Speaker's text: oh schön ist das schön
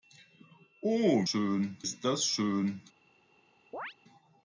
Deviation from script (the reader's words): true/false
false